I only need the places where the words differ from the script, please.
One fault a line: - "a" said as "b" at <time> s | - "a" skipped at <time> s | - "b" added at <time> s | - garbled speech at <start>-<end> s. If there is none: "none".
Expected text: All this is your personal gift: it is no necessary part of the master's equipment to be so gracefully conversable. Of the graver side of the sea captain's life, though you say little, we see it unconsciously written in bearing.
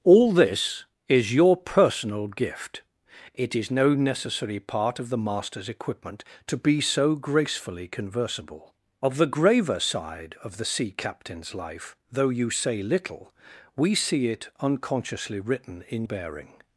none